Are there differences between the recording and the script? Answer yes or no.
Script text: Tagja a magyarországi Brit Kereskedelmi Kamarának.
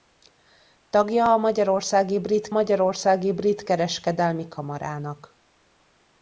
yes